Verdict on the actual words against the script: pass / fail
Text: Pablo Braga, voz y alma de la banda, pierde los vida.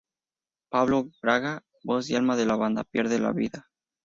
fail